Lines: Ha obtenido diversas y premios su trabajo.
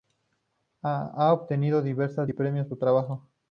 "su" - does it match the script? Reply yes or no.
yes